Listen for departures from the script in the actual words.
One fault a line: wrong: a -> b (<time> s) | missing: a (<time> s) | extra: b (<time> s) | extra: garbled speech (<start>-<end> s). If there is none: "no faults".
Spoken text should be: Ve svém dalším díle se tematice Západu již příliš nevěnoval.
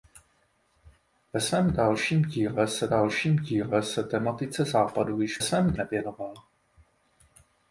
extra: dalším díle se (2.9 s)
wrong: příliš -> svém (5.4 s)